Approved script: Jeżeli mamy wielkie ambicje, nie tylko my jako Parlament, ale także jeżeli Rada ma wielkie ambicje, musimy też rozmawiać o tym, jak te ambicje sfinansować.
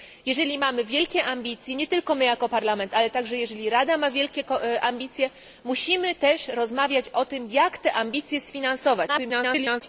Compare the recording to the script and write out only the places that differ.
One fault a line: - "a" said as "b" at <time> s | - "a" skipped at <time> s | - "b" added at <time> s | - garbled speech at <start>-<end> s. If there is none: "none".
- garbled speech at 9.1-9.8 s